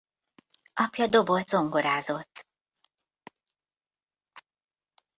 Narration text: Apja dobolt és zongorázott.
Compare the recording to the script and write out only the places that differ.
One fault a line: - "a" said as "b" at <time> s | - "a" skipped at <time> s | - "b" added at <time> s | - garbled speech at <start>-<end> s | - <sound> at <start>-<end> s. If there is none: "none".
- "és" skipped at 1.5 s